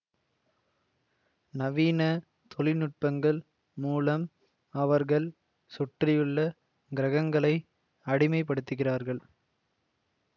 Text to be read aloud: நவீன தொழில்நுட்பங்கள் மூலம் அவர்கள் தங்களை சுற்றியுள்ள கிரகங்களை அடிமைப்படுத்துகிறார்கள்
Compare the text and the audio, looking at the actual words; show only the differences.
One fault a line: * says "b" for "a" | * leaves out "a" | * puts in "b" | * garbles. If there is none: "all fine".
* leaves out "தங்களை"